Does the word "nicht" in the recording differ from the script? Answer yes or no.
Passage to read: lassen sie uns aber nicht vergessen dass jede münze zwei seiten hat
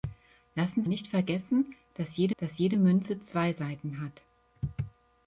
yes